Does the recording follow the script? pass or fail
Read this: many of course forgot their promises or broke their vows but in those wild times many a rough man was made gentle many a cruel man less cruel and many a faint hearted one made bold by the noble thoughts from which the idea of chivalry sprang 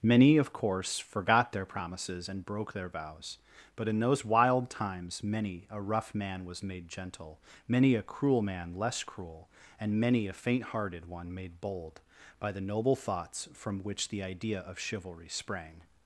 fail